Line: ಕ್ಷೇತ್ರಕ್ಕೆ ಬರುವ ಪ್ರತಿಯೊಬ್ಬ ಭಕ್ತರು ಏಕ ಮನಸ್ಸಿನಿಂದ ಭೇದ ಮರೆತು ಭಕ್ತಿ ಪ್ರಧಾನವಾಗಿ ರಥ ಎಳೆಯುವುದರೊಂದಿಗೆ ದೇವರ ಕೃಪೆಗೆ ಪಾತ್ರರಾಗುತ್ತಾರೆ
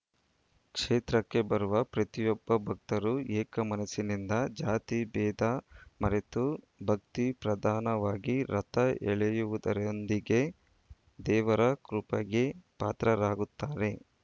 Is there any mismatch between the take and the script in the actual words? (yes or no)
yes